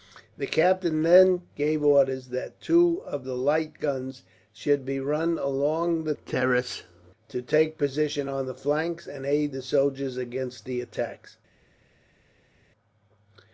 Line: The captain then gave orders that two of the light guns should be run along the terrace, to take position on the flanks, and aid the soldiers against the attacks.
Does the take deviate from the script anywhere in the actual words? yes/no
no